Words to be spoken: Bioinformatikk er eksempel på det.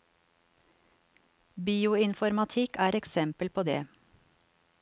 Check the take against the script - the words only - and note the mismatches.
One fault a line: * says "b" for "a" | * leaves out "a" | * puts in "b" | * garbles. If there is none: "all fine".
all fine